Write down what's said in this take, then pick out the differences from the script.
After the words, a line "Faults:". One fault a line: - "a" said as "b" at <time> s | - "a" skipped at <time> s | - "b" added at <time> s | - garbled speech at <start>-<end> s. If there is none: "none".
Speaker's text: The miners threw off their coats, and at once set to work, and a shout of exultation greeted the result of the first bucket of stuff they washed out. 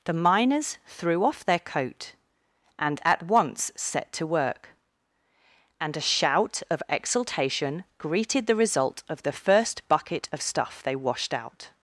The miners threw off their coat, and at once set to work, and a shout of exultation greeted the result of the first bucket of stuff they washed out.
Faults:
- "coats" said as "coat" at 1.6 s